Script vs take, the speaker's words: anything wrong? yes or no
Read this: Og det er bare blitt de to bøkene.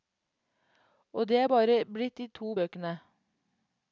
no